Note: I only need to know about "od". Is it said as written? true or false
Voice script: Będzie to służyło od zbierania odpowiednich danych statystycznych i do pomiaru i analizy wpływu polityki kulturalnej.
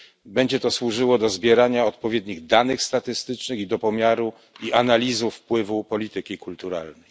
false